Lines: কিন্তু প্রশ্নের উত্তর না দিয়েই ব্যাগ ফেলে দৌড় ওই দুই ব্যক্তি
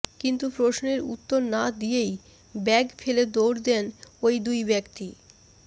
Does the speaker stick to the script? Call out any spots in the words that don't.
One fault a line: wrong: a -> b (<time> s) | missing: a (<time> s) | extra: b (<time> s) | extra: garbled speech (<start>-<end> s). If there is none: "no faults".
extra: দেন (3.7 s)